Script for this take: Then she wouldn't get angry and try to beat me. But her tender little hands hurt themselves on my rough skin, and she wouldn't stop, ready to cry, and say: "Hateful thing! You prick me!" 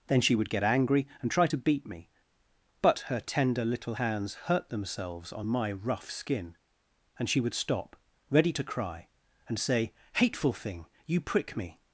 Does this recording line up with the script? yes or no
no